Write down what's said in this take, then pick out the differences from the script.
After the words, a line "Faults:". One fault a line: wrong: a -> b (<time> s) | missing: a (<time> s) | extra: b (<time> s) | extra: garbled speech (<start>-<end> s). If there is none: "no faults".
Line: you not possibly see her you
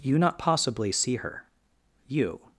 you not possibly see her you
Faults:
no faults